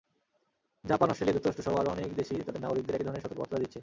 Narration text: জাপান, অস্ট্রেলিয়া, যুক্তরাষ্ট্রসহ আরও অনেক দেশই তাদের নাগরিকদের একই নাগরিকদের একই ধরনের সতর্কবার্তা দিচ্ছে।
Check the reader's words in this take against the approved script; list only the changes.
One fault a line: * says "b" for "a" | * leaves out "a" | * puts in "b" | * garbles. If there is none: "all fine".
* leaves out "নাগরিকদের একই"